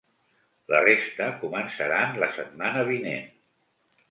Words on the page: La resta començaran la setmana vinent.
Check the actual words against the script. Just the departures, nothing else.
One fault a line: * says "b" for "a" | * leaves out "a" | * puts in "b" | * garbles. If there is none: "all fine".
all fine